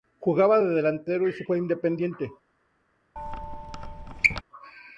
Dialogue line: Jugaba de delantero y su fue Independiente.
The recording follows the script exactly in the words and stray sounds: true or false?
false